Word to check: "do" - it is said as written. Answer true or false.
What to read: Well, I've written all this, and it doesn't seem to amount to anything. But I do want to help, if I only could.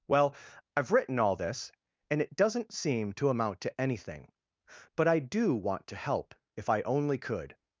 true